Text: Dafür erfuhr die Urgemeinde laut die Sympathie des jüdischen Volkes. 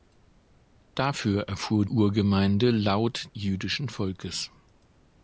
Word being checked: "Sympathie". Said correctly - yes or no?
no